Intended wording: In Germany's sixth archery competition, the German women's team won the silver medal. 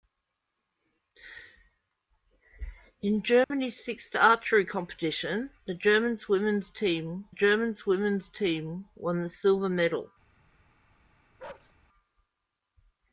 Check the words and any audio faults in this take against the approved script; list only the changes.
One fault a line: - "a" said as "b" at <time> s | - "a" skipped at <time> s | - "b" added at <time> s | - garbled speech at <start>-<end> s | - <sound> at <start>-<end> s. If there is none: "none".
- dropout at 3.4-3.5 s
- "German women's team" added at 7.3 s
- bark at 11.4-11.7 s